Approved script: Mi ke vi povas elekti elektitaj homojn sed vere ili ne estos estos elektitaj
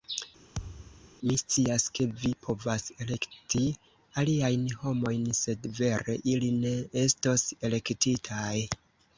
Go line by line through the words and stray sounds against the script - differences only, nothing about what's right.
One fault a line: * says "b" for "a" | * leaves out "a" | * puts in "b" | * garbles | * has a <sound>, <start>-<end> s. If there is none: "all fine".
* has a thud, 0.6-1.1 s
* puts in "scias"
* says "aliajn" for "elektitaj"
* leaves out "estos"